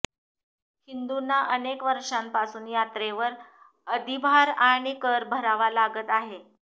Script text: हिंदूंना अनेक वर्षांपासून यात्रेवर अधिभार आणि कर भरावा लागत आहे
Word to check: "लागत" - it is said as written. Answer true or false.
true